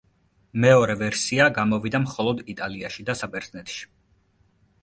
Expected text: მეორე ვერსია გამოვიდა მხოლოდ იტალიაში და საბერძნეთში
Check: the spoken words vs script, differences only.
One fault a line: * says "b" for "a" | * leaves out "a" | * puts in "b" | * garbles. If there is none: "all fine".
all fine